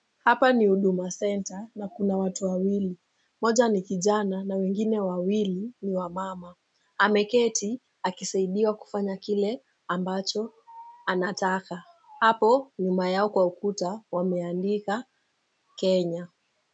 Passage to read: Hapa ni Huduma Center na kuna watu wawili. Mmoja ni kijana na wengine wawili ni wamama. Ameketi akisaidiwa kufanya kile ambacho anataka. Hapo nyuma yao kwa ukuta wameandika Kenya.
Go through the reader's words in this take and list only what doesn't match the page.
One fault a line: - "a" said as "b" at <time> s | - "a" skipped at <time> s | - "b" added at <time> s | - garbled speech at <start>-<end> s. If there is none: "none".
none